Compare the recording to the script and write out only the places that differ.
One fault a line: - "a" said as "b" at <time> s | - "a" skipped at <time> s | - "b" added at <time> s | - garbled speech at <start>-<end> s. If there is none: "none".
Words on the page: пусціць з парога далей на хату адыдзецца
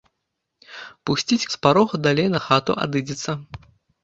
none